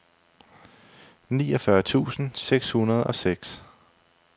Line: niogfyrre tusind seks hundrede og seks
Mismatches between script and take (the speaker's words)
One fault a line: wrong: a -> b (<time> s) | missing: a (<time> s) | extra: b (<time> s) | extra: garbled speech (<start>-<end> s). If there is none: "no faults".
no faults